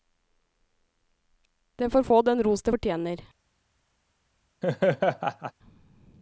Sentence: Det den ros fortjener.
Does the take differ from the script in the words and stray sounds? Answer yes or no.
yes